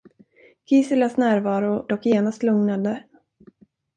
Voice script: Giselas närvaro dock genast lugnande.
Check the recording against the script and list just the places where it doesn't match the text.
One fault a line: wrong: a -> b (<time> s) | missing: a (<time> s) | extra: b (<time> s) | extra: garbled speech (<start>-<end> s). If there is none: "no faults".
no faults